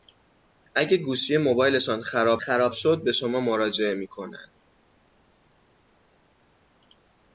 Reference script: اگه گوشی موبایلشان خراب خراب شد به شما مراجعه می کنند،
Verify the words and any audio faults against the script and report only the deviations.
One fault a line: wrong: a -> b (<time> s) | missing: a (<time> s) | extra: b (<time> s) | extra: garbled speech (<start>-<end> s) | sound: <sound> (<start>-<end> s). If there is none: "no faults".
no faults